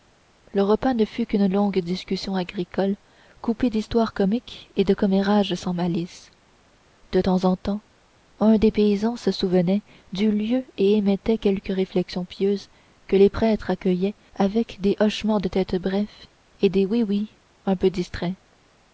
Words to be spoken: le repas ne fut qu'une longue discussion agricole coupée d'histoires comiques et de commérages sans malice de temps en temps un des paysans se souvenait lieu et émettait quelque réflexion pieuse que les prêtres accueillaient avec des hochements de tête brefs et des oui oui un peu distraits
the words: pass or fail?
fail